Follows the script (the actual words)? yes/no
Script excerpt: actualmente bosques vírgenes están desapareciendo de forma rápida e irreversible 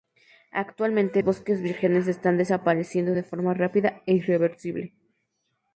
yes